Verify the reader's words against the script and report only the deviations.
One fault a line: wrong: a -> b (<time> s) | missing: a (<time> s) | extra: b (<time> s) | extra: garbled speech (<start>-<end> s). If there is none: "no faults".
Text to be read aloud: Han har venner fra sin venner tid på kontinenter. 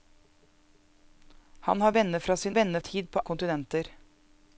no faults